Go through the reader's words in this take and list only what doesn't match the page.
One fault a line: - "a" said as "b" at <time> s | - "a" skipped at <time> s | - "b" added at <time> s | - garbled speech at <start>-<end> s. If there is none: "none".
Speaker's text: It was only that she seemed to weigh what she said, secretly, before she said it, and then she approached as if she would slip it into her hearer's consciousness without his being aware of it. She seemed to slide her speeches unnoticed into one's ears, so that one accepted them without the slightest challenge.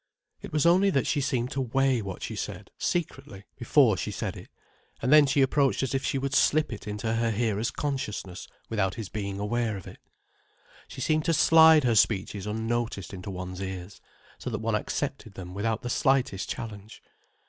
none